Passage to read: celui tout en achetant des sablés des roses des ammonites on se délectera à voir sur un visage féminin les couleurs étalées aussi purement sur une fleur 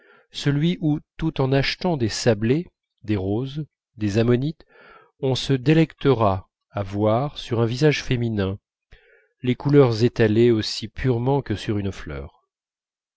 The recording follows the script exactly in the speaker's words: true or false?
false